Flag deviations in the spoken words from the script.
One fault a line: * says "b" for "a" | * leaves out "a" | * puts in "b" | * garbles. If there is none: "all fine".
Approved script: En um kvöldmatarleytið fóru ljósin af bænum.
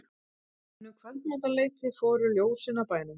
all fine